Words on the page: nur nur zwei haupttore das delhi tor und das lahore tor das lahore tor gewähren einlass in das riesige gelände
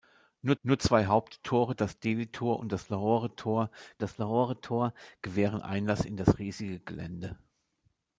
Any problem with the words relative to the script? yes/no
no